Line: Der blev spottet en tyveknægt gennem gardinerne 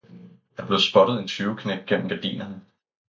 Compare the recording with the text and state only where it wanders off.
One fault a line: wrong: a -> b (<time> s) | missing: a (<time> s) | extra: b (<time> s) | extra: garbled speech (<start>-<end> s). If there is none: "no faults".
no faults